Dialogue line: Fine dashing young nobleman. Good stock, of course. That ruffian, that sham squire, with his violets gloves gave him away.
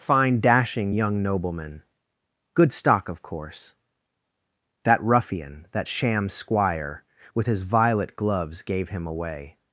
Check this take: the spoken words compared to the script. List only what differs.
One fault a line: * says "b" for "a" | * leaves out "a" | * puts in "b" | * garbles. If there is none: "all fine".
* says "violet" for "violets"